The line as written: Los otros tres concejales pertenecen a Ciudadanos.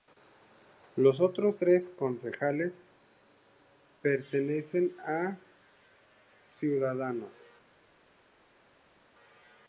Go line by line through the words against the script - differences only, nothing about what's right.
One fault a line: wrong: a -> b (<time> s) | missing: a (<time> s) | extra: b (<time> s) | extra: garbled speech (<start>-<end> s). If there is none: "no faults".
no faults